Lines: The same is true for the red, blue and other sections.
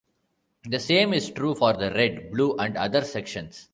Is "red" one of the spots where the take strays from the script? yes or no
no